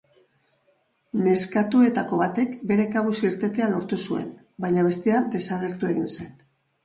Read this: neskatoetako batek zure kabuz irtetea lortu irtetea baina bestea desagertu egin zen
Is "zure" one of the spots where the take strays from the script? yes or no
yes